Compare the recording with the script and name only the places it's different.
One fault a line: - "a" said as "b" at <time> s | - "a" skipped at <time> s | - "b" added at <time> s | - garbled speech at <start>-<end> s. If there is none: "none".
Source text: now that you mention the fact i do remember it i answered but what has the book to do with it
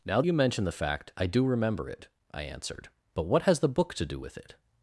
- "that" skipped at 0.2 s